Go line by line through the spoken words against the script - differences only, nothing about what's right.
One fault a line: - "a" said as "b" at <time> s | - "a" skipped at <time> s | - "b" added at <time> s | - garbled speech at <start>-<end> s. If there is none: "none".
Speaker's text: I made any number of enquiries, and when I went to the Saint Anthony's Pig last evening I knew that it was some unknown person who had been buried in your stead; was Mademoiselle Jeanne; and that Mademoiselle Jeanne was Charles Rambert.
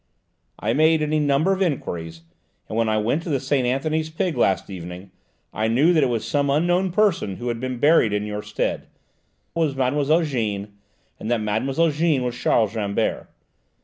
none